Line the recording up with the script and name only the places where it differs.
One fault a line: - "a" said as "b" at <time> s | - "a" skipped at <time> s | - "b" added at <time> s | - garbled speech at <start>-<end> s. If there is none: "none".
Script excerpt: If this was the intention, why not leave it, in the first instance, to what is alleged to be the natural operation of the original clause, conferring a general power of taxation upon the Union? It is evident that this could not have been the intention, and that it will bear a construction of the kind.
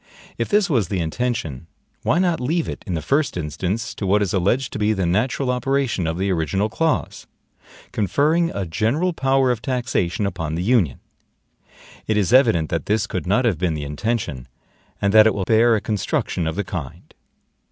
none